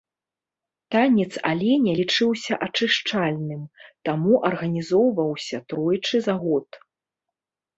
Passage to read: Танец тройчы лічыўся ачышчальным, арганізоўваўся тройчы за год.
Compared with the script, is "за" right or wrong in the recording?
right